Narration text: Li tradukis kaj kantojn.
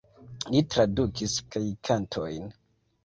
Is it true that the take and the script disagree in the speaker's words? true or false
false